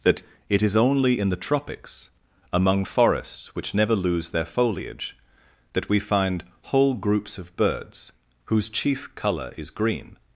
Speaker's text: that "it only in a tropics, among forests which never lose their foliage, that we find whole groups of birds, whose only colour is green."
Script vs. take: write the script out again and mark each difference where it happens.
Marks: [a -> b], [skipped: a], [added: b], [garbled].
that "it [added: is] only in [a -> the] tropics, among forests which never lose their foliage, that we find whole groups of birds, whose [only -> chief] colour is green."